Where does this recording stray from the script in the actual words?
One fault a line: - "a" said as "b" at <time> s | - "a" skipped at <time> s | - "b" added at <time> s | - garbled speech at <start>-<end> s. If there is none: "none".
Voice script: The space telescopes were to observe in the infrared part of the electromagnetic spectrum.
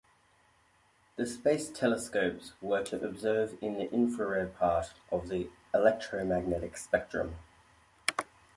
none